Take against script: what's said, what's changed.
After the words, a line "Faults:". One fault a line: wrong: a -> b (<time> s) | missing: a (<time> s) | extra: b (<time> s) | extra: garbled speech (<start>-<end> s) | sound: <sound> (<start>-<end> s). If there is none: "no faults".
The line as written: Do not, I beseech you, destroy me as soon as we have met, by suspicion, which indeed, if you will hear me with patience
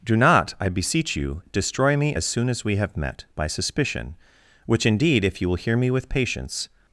Do not, I beseech you, destroy me as soon as we have met, by suspicion, which indeed, if you will hear me with patience
Faults:
no faults